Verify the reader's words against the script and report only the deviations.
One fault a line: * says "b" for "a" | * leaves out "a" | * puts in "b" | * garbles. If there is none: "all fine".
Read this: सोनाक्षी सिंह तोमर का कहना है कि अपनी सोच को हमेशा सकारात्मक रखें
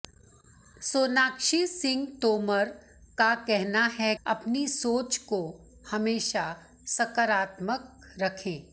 * leaves out "कि"